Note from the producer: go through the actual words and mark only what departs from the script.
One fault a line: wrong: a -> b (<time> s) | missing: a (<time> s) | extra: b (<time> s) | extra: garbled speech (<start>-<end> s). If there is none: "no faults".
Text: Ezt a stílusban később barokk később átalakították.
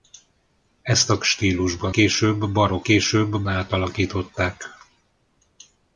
no faults